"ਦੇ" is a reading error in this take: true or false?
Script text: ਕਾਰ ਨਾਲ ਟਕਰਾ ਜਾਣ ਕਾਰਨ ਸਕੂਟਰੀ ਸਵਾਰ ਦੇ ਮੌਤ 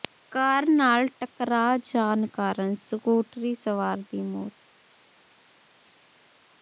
true